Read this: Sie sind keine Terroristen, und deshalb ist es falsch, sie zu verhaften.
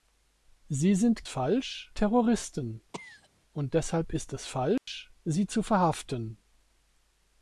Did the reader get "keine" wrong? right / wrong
wrong